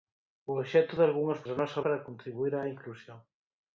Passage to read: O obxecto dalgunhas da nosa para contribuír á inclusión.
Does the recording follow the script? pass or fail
pass